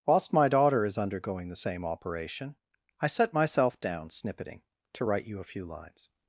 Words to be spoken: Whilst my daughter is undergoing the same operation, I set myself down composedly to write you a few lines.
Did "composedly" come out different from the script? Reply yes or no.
yes